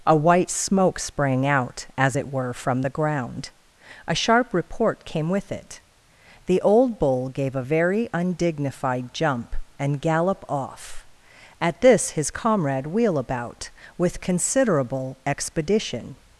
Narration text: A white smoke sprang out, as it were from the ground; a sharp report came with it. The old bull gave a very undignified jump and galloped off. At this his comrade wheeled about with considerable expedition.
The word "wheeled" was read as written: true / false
false